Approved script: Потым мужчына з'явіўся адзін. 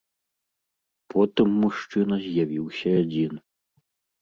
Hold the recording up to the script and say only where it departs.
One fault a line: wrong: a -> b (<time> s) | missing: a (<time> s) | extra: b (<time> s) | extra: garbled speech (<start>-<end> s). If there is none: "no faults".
no faults